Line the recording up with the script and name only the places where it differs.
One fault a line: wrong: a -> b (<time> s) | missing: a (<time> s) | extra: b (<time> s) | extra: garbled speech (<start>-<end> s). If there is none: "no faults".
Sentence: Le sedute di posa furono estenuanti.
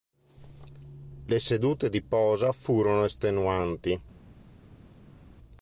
no faults